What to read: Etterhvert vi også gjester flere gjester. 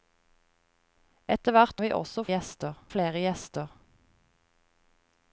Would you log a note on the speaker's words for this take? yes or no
no